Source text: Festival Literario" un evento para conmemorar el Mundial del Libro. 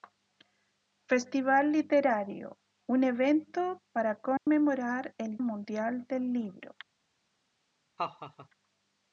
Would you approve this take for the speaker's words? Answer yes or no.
yes